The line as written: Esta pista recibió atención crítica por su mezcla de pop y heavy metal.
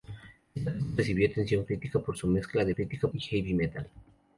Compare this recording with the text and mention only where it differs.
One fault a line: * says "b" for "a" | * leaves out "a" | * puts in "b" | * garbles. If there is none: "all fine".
* says "crítica" for "pop"